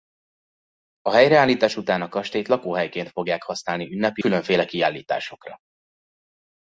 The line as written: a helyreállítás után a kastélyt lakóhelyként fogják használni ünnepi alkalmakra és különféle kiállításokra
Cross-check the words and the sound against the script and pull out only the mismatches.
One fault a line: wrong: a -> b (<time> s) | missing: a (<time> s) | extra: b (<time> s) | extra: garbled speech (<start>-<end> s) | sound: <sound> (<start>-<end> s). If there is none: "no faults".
missing: alkalmakra és (4.2 s)